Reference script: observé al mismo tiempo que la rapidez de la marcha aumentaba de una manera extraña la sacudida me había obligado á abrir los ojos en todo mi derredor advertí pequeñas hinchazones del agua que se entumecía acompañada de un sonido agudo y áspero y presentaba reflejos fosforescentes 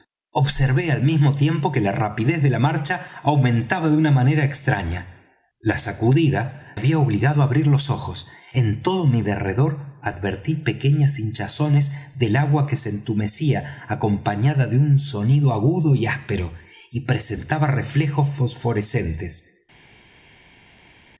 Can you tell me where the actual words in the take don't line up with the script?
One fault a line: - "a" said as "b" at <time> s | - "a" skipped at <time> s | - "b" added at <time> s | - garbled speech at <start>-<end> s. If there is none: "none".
- "me" skipped at 6.8 s